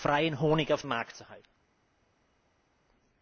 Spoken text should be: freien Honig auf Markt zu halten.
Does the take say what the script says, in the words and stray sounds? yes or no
yes